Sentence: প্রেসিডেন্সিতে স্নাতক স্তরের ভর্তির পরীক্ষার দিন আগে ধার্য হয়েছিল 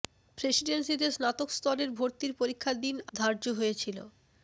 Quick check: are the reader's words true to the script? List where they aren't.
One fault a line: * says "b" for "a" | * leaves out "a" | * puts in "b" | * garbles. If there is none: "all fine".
* leaves out "আগে"